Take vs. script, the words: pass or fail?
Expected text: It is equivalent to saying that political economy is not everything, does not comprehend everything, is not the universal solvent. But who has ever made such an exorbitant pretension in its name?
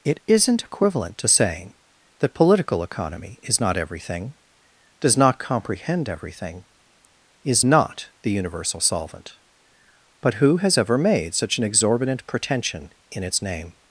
fail